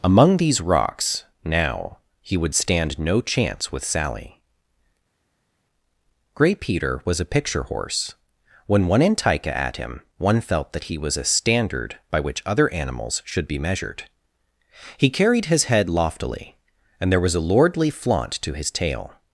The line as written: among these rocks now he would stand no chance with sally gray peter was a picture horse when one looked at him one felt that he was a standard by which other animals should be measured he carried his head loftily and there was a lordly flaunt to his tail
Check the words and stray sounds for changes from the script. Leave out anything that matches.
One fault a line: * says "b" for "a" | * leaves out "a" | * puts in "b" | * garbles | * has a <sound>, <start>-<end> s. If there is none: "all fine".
* says "antica" for "looked"